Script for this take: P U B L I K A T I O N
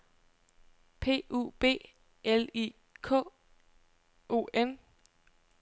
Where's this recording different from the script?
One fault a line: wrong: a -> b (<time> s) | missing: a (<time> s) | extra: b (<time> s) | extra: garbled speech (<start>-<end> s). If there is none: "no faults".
missing: A T I (3.2 s)